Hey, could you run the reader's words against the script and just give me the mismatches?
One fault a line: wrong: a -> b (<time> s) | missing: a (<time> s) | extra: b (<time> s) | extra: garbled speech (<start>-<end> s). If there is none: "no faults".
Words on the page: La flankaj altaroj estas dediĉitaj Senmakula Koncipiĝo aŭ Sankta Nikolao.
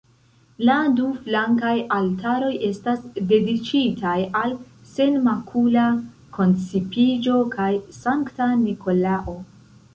extra: du (1.0 s)
extra: al (4.4 s)
wrong: aŭ -> kaj (7.6 s)